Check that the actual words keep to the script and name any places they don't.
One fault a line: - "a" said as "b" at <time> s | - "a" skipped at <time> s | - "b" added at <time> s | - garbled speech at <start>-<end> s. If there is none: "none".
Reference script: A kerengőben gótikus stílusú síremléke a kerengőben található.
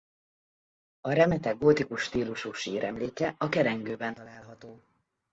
- "kerengőben" said as "remete" at 1.1 s